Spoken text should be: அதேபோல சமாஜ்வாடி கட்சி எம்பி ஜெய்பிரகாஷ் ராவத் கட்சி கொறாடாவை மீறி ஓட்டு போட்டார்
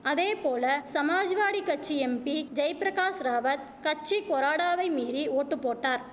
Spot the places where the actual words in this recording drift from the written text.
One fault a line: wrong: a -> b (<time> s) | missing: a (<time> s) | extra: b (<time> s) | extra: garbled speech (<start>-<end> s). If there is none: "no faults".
no faults